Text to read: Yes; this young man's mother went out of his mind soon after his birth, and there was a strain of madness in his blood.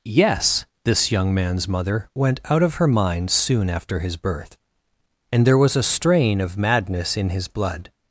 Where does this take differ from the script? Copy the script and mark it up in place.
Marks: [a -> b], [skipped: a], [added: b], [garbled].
Yes; this young man's mother went out of [his -> her] mind soon after his birth, and there was a strain of madness in his blood.